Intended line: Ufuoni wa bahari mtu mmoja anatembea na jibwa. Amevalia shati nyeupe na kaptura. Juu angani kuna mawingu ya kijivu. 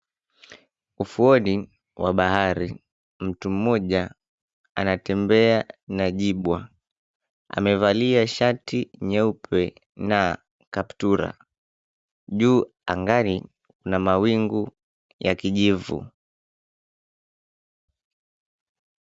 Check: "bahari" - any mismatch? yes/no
no